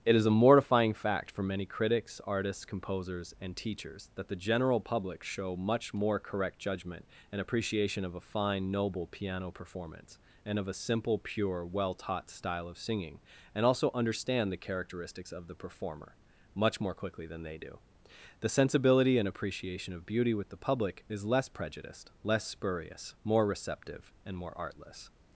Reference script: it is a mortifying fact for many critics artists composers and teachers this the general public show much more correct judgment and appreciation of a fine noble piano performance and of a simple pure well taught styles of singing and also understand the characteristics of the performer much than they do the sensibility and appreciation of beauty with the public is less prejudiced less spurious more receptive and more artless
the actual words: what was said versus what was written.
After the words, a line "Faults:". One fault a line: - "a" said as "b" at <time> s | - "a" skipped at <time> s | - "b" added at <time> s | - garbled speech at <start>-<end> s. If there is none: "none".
it is a mortifying fact for many critics artists composers and teachers that the general public show much more correct judgment and appreciation of a fine noble piano performance and of a simple pure well taught style of singing and also understand the characteristics of the performer much more quickly than they do the sensibility and appreciation of beauty with the public is less prejudiced less spurious more receptive and more artless
Faults:
- "this" said as "that" at 4.2 s
- "styles" said as "style" at 12.3 s
- "more quickly" added at 16.8 s